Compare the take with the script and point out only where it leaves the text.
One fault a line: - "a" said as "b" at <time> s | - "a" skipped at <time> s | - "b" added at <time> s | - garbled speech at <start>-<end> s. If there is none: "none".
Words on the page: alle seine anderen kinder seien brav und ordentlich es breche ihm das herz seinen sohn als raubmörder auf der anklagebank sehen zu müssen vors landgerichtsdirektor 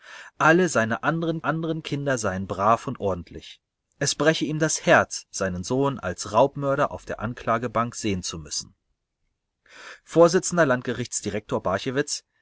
- "anderen" added at 1.4 s